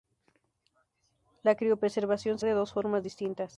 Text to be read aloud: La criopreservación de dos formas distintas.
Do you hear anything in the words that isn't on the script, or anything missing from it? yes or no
no